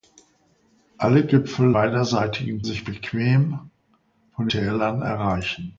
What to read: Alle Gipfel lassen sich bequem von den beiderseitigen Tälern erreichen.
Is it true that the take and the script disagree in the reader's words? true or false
true